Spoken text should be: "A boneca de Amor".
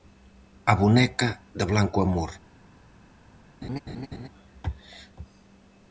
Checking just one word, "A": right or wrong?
right